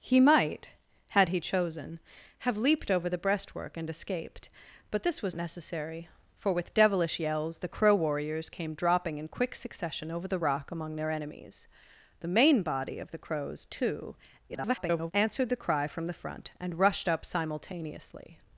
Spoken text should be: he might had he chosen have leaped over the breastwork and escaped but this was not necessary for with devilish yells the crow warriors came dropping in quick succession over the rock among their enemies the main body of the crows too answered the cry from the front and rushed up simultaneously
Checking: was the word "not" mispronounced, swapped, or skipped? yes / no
yes